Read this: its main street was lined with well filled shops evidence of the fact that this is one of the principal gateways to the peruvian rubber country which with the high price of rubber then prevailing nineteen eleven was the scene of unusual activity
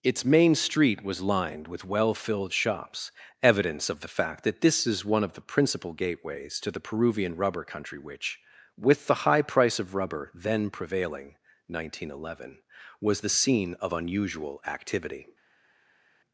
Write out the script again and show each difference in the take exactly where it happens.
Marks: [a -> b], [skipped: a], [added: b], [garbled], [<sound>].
its main street was lined with well filled shops evidence of the fact that this is one of the principal gateways to the peruvian rubber country which with the high price of rubber then prevailing nineteen eleven was the scene of unusual activity